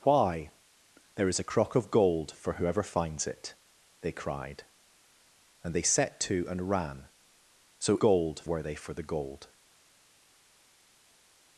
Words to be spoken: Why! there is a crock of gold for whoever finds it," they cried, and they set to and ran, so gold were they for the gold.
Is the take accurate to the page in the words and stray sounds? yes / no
yes